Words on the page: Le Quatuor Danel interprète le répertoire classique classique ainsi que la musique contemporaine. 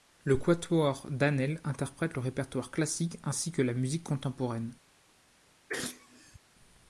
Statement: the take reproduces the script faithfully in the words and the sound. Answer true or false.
false